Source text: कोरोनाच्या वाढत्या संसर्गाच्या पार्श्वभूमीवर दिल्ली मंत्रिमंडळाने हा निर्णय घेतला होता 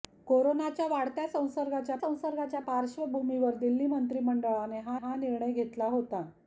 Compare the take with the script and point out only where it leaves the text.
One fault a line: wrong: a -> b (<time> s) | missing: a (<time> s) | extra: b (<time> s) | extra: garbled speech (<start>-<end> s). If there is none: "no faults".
extra: संसर्गाच्या (2.0 s)
extra: हा (5.0 s)